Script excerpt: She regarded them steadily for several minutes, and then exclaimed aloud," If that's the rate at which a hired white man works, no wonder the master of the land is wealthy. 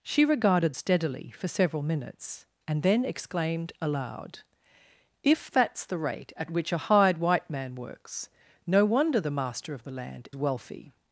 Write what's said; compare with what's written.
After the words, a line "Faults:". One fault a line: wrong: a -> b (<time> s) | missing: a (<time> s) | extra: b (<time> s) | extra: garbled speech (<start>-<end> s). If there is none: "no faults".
She regarded steadily for several minutes, and then exclaimed aloud," If that's the rate at which a hired white man works, no wonder the master of the land wealthy.
Faults:
missing: them (0.7 s)
missing: is (10.3 s)